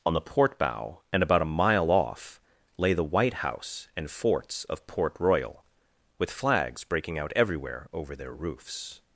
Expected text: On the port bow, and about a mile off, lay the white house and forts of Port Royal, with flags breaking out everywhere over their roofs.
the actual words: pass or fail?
pass